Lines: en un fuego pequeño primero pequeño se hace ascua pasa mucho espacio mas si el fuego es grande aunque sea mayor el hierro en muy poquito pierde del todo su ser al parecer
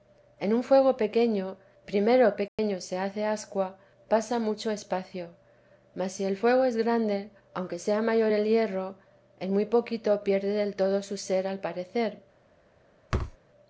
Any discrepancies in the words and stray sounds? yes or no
yes